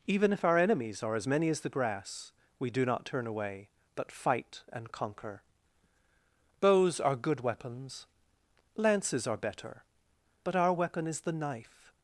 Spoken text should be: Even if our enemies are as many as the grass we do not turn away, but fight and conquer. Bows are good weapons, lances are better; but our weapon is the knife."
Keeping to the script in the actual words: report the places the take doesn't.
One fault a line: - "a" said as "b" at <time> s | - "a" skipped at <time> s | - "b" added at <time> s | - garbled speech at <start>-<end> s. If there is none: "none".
none